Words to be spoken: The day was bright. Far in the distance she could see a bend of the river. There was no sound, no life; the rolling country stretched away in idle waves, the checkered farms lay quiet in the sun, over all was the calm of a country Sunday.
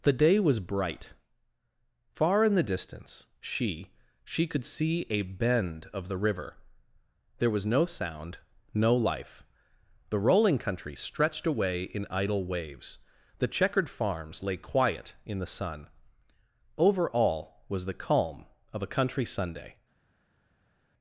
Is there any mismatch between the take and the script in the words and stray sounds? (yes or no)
yes